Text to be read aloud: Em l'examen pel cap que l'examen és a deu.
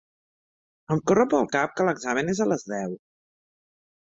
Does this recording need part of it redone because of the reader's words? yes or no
yes